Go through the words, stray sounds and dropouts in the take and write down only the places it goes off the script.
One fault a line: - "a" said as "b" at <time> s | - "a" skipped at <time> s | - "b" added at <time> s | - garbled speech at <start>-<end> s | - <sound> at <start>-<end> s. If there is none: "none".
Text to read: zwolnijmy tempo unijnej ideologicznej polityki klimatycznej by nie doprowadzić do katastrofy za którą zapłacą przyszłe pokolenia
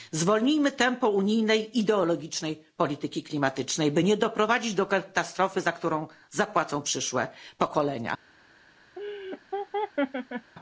- laugh at 9.0-10.5 s